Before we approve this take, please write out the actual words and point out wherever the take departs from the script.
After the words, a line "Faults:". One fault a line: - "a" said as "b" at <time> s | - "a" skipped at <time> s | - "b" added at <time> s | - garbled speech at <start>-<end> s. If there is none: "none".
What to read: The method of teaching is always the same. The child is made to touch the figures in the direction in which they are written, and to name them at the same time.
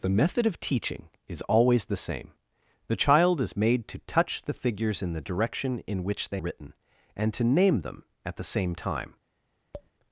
The method of teaching is always the same. The child is made to touch the figures in the direction in which they written, and to name them at the same time.
Faults:
- "are" skipped at 6.4 s